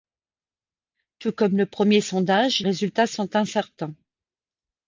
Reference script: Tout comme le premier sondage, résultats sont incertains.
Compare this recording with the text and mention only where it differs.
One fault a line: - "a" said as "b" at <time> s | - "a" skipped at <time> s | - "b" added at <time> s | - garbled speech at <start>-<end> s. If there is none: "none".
none